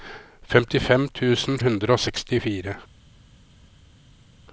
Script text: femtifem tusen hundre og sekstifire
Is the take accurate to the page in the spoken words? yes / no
yes